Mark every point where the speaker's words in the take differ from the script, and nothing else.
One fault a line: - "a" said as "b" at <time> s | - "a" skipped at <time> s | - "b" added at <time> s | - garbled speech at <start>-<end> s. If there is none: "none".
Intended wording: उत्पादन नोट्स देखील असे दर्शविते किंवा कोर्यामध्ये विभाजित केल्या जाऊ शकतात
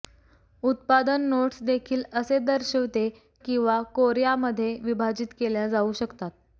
none